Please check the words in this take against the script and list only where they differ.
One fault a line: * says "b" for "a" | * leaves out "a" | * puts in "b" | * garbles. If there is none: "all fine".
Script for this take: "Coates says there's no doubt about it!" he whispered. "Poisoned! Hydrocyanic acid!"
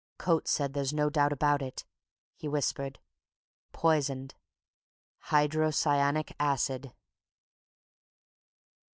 all fine